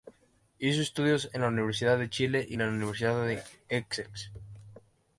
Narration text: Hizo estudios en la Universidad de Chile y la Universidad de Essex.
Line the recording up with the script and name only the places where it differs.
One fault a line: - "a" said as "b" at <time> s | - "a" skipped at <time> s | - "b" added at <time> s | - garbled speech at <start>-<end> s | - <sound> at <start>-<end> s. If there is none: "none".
none